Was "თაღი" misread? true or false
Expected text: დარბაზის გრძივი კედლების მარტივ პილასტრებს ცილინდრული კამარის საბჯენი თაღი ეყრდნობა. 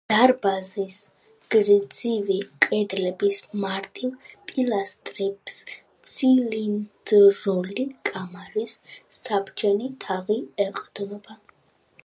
false